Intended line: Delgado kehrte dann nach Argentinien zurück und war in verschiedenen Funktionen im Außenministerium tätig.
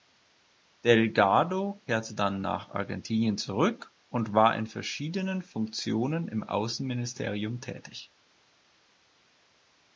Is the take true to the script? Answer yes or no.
yes